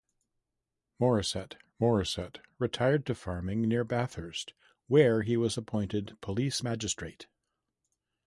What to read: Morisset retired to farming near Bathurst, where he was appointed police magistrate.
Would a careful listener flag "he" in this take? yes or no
no